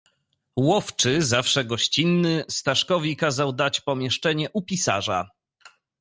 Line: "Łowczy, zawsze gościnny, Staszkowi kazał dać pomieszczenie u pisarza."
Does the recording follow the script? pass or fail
pass